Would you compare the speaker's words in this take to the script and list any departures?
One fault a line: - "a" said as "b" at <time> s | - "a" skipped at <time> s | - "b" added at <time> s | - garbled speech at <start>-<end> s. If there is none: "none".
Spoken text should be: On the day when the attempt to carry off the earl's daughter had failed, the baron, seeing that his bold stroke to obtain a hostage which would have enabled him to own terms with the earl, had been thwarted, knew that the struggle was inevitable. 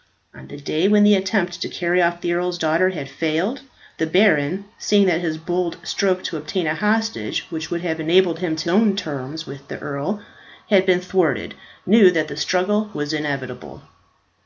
none